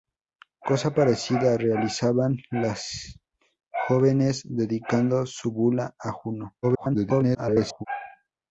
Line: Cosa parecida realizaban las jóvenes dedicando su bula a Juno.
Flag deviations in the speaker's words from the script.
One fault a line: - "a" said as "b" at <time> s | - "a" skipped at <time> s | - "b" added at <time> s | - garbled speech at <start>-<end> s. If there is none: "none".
- garbled speech at 6.6-7.9 s